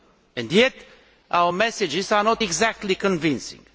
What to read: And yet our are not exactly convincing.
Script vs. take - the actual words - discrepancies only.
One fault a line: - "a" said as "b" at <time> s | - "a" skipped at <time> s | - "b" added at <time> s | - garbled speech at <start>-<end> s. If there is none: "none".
- "messages" added at 1.5 s